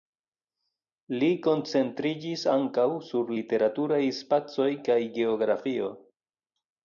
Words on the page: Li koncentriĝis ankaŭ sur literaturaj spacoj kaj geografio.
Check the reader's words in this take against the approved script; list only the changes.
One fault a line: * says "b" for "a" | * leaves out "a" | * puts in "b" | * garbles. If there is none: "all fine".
all fine